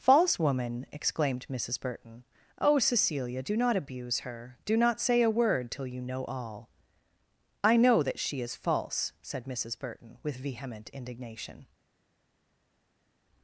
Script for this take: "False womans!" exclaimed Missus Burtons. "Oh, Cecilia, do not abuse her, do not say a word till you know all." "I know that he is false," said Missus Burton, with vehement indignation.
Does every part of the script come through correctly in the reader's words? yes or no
no